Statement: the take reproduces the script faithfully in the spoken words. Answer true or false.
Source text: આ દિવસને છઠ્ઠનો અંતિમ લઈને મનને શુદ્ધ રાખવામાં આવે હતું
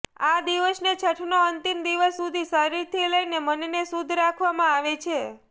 false